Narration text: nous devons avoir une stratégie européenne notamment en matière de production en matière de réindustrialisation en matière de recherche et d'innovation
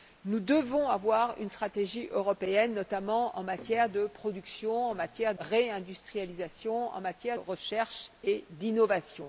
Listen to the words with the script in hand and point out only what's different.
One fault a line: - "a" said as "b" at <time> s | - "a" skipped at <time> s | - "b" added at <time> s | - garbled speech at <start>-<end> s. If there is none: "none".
- "de" skipped at 5.3 s
- "de" skipped at 7.4 s